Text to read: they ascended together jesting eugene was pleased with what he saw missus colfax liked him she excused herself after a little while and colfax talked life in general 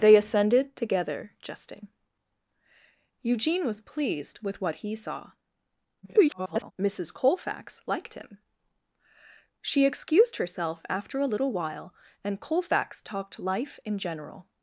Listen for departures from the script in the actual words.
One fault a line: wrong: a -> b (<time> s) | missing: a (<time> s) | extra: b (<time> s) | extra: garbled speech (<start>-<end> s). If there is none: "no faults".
extra: garbled speech (6.0-6.7 s)